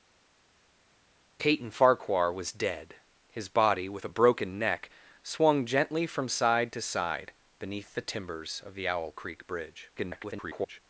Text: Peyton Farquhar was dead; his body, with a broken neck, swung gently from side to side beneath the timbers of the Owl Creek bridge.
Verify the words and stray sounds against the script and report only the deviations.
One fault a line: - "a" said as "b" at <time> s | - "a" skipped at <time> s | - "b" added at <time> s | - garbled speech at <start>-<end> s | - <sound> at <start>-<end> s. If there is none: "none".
- garbled speech at 10.0-10.8 s